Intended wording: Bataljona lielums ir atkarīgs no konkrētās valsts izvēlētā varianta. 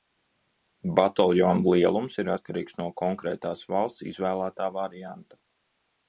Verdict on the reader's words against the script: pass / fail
pass